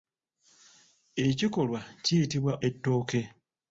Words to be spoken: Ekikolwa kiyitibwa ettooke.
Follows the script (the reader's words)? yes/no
yes